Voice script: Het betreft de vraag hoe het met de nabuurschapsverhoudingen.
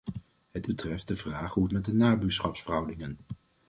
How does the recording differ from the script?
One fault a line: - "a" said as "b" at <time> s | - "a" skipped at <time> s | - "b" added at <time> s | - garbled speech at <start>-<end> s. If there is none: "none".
none